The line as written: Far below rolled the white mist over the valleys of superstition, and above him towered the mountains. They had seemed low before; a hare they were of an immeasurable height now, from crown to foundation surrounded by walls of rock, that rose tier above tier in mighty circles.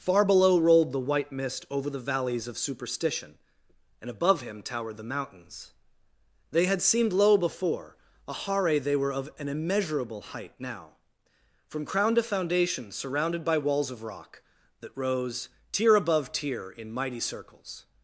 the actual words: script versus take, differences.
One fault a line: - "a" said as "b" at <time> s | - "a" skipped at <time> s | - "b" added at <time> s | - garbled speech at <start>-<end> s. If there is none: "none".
none